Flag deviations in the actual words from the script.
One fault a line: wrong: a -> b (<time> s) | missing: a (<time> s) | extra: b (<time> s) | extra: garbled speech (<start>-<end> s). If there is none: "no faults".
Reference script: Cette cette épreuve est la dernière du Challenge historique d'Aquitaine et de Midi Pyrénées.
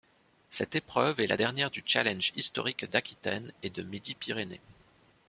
missing: cette (0.7 s)